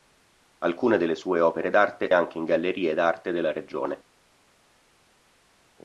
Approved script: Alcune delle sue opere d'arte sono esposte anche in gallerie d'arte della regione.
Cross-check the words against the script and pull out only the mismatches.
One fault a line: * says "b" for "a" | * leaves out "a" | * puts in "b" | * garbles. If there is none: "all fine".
* leaves out "sono esposte"